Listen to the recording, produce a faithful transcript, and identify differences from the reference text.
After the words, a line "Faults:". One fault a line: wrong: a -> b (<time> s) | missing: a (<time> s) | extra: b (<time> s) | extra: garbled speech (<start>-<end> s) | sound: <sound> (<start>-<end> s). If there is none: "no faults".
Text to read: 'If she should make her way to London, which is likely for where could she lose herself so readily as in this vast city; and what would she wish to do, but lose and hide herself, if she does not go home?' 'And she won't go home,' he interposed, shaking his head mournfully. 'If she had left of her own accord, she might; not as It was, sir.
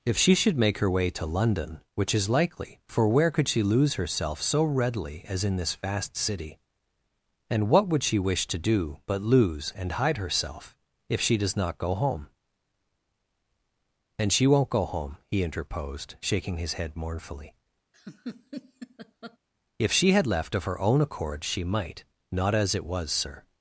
'If she should make her way to London, which is likely for where could she lose herself so readily as in this vast city; and what would she wish to do, but lose and hide herself, if she does not go home?' 'And she won't go home,' he interposed, shaking his head mournfully. 'If she had left of her own accord, she might; not as It was, sir.
Faults:
sound: laugh (17.9-19.4 s)